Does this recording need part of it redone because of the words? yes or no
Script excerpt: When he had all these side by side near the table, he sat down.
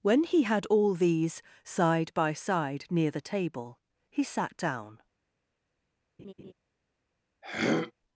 no